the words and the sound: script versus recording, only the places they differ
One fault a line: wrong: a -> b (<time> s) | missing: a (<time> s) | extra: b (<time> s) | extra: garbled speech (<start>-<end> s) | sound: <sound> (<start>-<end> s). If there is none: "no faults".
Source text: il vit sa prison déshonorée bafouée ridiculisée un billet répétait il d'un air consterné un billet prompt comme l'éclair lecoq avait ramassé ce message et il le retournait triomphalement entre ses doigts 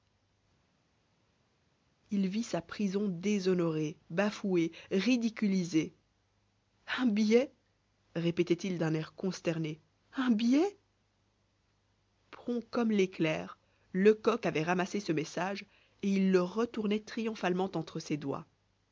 no faults